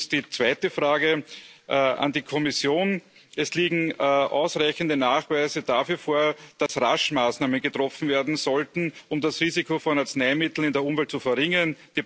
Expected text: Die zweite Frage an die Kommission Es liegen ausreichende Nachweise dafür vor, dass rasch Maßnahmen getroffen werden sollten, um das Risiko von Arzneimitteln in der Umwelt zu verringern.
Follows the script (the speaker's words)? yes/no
yes